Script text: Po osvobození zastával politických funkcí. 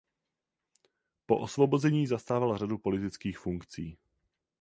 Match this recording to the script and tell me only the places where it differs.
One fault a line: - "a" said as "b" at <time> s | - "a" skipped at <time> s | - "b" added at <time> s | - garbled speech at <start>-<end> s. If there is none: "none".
- "řadu" added at 2.6 s